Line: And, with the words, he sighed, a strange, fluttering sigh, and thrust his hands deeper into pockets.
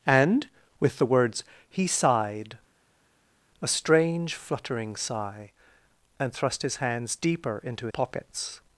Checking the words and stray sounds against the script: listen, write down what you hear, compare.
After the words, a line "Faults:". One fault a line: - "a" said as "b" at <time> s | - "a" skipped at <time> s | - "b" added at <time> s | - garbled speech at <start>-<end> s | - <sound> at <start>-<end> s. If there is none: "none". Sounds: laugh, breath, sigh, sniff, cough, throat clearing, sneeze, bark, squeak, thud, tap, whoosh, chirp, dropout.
And, with the words, he sighed, a strange, fluttering sigh, and thrust his hands deeper into pockets.
Faults:
none